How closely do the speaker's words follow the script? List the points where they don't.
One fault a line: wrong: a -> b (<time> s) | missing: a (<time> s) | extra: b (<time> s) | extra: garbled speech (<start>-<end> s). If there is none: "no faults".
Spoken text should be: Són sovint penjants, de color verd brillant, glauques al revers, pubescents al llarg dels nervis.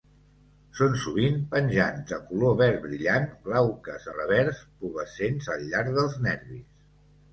missing: al (4.1 s)